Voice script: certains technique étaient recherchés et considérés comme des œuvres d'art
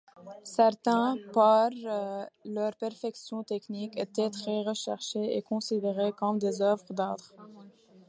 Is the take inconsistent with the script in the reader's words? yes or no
yes